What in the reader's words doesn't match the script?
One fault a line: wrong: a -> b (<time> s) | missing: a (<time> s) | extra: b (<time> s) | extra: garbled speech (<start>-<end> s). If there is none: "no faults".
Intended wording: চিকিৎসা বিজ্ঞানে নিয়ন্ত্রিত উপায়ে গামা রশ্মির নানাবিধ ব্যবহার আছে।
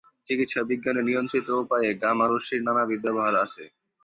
no faults